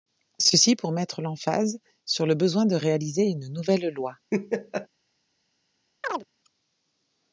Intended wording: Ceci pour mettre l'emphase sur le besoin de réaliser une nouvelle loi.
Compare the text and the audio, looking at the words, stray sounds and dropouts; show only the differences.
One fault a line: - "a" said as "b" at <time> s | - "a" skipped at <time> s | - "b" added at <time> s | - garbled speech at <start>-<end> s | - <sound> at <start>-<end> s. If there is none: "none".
- laugh at 4.3-4.9 s
- chirp at 6.0-6.2 s